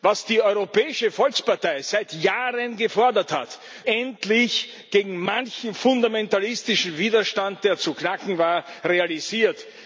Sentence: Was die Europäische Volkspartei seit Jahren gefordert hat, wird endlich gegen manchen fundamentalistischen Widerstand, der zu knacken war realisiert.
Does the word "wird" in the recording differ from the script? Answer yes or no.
yes